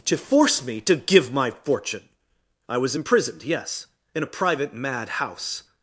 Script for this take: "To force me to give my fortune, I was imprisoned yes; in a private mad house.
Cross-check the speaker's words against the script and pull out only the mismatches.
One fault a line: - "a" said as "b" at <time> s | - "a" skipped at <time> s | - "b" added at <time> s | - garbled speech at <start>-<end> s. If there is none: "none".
none